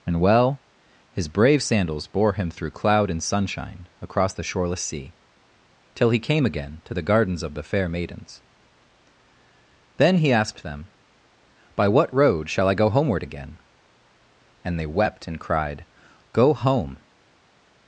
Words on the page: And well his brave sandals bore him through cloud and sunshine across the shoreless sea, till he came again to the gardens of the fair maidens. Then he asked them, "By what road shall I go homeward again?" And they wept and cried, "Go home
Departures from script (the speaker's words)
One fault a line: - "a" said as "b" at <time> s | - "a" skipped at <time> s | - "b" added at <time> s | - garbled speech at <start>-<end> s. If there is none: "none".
none